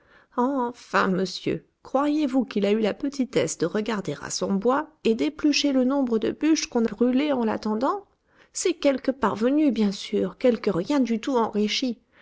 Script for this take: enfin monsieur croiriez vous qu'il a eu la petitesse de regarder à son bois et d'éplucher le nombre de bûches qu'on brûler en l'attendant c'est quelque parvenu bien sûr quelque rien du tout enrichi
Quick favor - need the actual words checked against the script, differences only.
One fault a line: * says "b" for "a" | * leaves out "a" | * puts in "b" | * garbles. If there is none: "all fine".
all fine